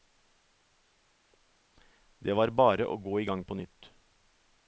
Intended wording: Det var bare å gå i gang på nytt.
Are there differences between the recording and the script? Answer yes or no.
no